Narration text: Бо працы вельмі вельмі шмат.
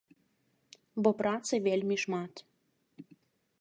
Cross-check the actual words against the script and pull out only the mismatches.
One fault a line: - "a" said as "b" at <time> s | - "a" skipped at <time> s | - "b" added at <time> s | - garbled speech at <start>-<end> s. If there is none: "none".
- "вельмі" skipped at 1.9 s